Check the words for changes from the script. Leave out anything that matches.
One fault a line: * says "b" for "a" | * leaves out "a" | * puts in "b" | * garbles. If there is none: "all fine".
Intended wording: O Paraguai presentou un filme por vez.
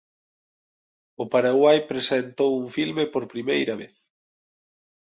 * puts in "primeira"